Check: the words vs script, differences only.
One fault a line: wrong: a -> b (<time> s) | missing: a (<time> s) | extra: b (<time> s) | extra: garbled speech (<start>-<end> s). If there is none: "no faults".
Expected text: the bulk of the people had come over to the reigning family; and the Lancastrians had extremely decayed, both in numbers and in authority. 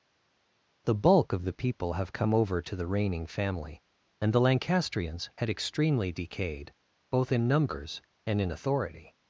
wrong: had -> have (1.9 s)